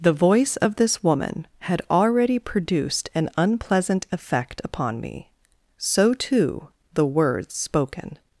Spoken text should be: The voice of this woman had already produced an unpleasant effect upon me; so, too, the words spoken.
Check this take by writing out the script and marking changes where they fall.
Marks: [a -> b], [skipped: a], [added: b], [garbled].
The voice of this woman had already produced an unpleasant effect upon me; so, too, the words spoken.